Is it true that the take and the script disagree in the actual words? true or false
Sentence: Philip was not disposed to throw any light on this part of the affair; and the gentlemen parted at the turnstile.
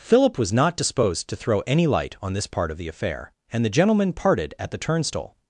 false